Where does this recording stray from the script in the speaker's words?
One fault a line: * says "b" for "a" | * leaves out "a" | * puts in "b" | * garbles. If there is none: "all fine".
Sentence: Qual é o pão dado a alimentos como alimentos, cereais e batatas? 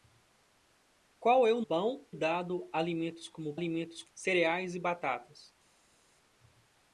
all fine